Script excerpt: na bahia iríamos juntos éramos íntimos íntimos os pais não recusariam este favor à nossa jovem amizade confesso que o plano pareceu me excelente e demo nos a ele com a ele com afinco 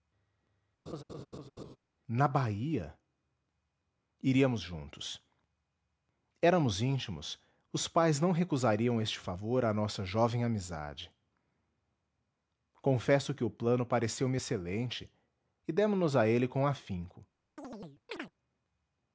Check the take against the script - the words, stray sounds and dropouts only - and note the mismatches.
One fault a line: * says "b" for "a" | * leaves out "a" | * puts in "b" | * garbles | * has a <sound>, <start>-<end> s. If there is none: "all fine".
* has a laugh, 0.9-1.8 s
* leaves out "íntimos"
* leaves out "a ele com"
* has a chirp, 17.6-18.3 s